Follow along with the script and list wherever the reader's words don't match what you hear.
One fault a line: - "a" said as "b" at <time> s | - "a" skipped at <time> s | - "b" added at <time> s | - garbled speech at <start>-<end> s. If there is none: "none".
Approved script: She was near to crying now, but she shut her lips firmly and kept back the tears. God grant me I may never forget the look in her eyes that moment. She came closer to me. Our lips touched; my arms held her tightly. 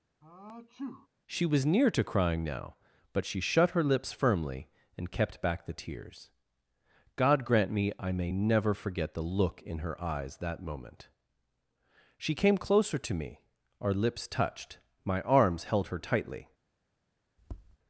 none